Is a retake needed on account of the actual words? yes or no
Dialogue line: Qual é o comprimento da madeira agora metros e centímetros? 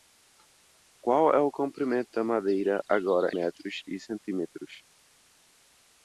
no